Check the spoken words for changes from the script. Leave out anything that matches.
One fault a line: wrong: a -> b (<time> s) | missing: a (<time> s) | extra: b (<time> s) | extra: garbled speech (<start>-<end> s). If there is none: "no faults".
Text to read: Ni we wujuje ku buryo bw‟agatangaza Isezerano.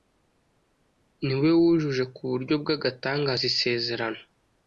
no faults